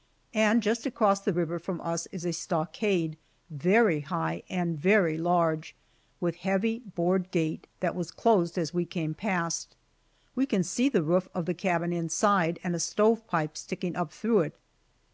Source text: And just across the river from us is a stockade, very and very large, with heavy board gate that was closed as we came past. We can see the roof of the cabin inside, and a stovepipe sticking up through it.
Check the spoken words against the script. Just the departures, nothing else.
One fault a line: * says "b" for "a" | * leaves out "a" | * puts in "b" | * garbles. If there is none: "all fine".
* puts in "high"